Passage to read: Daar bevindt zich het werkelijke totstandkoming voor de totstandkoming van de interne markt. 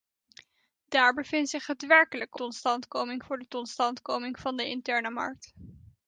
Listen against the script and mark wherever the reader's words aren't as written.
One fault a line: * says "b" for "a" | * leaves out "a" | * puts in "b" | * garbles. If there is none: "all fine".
all fine